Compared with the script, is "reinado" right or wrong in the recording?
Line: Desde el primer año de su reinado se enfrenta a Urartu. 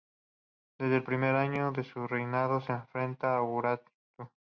right